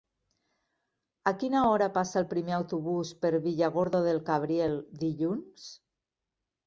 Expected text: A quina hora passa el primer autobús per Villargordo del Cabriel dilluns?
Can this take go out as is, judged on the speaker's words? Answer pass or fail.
pass